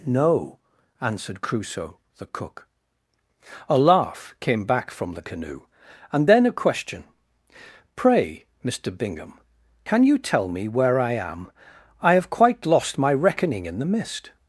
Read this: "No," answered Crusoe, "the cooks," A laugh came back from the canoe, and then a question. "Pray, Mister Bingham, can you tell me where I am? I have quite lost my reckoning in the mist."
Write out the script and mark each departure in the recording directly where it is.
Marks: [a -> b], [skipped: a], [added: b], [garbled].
"No," answered Crusoe, "the [cooks," -> cook] A laugh came back from the canoe, and then a question. "Pray, Mister Bingham, can you tell me where I am? I have quite lost my reckoning in the mist."